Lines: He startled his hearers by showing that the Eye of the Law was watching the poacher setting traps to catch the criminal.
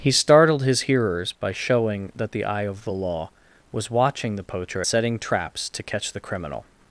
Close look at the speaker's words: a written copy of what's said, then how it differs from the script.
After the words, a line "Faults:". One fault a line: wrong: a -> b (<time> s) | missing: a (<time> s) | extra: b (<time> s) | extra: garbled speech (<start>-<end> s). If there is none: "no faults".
He startled his hearers by showing that the Eye of the Law was watching the poacher setting traps to catch the criminal.
Faults:
no faults